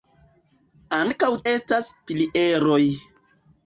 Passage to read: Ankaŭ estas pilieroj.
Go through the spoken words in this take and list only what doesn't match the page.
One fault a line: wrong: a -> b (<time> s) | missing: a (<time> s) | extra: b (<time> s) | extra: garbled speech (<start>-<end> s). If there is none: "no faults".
no faults